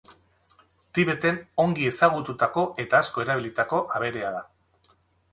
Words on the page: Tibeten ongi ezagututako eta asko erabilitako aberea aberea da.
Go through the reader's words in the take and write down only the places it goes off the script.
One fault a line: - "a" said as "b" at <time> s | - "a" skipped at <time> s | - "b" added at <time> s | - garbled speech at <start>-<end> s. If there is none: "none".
- "aberea" skipped at 4.3 s